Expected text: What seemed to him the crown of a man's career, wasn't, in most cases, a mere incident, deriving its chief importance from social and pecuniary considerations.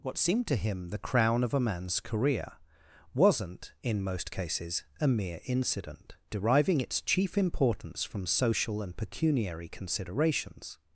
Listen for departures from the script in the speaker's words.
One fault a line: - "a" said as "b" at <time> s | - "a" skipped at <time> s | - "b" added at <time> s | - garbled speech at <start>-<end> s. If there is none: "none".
none